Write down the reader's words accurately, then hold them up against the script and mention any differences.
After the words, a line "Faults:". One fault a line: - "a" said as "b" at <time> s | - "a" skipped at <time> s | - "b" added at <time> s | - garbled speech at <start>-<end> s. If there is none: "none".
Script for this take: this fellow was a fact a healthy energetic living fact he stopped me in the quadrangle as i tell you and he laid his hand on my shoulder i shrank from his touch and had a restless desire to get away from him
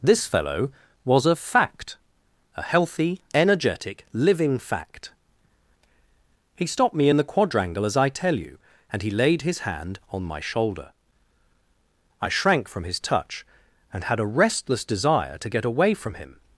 this fellow was a fact a healthy energetic living fact he stopped me in the quadrangle as i tell you and he laid his hand on my shoulder i shrank from his touch and had a restless desire to get away from him
Faults:
none